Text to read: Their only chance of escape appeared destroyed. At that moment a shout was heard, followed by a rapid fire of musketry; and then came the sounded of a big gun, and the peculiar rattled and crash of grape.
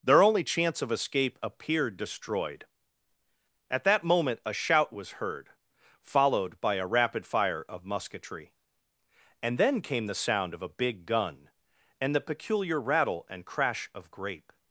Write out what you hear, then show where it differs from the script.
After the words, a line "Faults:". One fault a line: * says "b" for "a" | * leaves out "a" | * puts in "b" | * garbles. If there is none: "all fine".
Their only chance of escape appeared destroyed. At that moment a shout was heard, followed by a rapid fire of musketry; and then came the sound of a big gun, and the peculiar rattle and crash of grape.
Faults:
* says "sound" for "sounded"
* says "rattle" for "rattled"